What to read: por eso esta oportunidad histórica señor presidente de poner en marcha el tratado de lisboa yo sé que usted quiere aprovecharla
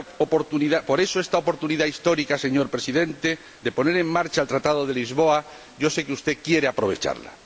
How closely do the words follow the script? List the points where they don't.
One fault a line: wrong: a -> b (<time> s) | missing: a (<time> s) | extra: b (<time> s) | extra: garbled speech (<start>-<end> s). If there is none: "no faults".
no faults